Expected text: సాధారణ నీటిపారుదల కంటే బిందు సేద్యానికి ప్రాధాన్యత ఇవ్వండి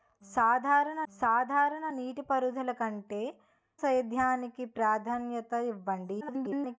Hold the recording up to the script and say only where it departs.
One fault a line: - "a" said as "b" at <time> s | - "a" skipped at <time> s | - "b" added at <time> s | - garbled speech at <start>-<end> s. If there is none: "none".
- "సాధారణ" added at 1.1 s
- "బిందు" skipped at 3.2 s
- garbled speech at 6.2-6.8 s